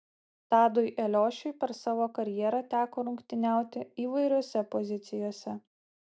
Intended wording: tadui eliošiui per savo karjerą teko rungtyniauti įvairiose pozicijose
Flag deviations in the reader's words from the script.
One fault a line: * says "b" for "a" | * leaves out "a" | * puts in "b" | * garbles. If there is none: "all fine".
all fine